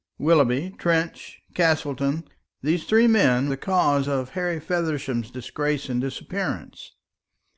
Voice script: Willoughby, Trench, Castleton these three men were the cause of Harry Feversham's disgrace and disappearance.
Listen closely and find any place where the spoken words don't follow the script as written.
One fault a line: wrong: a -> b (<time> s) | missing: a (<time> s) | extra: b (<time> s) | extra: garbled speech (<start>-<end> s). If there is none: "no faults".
missing: were (3.5 s)